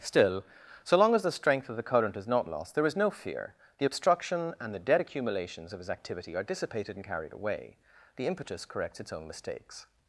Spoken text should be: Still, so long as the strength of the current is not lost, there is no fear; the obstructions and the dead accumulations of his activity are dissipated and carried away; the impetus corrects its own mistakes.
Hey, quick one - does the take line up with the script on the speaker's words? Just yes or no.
no